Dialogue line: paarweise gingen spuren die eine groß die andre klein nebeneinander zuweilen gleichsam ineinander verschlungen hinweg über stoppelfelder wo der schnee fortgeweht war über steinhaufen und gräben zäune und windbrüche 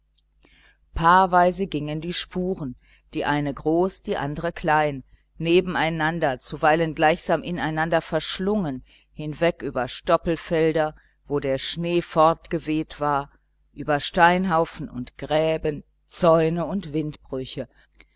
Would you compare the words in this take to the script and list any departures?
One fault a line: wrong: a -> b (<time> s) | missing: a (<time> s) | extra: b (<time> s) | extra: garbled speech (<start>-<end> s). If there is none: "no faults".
extra: die (2.0 s)